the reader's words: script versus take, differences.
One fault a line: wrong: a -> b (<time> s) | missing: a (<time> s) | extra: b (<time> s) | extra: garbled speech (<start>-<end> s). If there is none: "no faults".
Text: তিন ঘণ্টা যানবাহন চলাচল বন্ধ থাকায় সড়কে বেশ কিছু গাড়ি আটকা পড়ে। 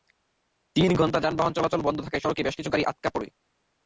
no faults